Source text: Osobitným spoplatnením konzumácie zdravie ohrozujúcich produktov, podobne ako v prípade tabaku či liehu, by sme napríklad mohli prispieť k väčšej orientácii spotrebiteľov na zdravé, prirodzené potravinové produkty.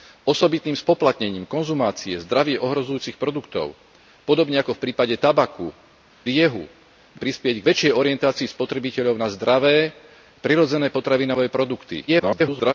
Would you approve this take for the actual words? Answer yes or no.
no